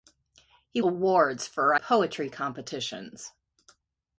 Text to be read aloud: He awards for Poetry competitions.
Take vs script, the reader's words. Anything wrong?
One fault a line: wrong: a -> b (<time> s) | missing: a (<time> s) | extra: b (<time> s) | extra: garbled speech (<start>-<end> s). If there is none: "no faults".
no faults